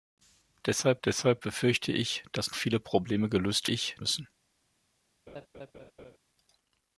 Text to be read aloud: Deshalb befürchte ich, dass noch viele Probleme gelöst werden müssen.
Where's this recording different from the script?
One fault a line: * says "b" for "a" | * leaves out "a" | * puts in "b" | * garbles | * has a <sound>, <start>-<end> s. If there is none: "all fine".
* puts in "deshalb"
* leaves out "noch"
* says "ich" for "werden"
* has a laugh, 5.3-6.2 s